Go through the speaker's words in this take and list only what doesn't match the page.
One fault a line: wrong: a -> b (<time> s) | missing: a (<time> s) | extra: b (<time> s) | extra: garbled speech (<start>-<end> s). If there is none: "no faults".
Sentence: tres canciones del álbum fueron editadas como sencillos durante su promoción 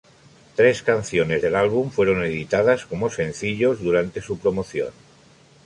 no faults